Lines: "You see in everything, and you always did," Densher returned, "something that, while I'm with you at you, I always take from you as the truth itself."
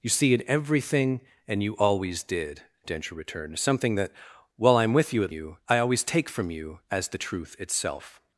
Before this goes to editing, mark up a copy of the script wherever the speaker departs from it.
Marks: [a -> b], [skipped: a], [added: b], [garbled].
"You see in everything, and you always did," Densher returned, "something that, while I'm with you at you, I always take from you as the truth itself."